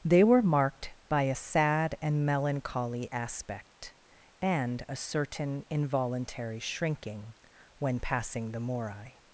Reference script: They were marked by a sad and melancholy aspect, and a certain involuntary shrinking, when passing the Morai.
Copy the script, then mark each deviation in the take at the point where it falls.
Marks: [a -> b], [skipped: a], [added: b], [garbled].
They were marked by a sad and melancholy aspect, and a certain involuntary shrinking, when passing the Morai.